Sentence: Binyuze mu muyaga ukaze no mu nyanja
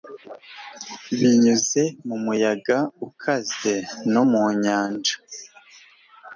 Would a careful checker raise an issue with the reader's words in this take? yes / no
no